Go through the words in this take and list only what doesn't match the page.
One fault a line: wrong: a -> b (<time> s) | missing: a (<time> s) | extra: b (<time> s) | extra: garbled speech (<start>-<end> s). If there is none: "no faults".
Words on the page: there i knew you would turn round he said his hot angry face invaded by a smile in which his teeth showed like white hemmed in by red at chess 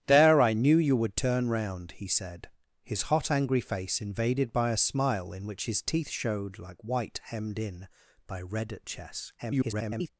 extra: garbled speech (9.4-10.1 s)